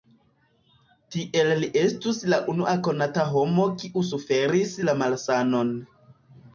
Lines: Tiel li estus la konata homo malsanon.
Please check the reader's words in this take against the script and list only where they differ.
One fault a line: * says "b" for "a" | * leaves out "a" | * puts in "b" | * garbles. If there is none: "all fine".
* puts in "unua"
* puts in "kiu suferis la"